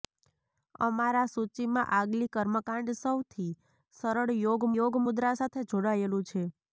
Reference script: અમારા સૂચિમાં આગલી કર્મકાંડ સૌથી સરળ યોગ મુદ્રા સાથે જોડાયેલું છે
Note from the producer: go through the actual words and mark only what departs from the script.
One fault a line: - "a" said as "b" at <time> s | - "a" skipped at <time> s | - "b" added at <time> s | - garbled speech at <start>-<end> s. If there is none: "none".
- "યોગ" added at 4.7 s